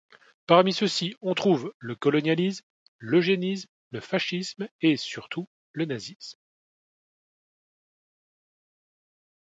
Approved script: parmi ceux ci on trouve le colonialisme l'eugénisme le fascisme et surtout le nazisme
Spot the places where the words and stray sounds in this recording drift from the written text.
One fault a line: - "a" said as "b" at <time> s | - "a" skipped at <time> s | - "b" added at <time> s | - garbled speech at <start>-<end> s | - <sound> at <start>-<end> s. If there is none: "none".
none